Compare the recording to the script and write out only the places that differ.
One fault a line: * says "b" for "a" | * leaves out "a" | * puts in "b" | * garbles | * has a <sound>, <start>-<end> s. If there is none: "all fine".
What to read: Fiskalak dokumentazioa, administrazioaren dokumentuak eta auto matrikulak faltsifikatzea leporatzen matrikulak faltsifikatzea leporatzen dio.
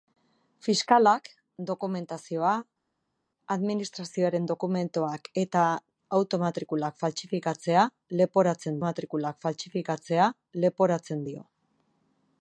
all fine